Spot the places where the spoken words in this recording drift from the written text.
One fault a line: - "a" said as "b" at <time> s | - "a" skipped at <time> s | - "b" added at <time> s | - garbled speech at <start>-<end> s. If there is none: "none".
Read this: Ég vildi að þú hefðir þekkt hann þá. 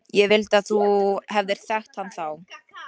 none